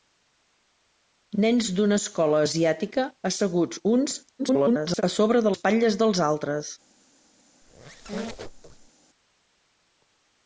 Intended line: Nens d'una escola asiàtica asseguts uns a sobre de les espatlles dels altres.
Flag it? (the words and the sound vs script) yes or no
yes